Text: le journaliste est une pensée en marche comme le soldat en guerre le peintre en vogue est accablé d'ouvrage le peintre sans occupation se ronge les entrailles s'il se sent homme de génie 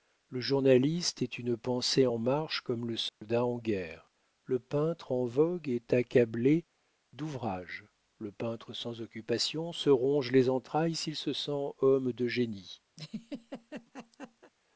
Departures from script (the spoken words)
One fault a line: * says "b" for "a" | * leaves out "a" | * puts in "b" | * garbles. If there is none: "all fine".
all fine